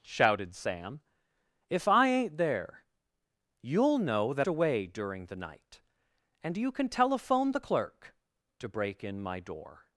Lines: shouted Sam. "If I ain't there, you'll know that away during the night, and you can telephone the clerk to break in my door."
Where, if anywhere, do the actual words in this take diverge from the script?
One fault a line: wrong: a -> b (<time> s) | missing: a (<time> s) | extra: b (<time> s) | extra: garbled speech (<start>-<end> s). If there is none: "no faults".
no faults